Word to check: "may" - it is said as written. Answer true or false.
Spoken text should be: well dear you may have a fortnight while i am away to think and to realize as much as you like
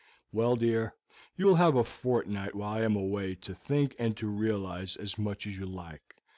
false